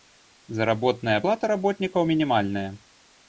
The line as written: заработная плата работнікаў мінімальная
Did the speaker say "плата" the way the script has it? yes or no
yes